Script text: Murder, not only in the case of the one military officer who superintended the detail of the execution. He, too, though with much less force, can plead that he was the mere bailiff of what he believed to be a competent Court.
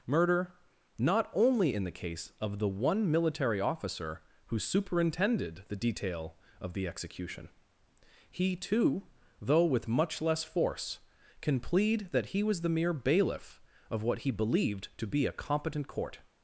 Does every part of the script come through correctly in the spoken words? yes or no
yes